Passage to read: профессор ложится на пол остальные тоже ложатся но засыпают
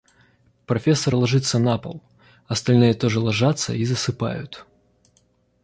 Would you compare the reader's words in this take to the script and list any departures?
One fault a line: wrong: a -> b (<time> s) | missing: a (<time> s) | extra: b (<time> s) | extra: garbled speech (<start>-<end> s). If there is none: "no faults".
wrong: но -> и (3.7 s)